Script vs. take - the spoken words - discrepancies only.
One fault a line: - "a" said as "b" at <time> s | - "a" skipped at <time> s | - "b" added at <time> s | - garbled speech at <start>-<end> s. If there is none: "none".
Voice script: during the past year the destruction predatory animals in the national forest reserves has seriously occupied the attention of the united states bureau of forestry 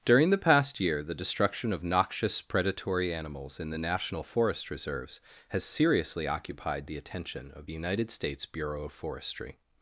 - "of noxious" added at 1.7 s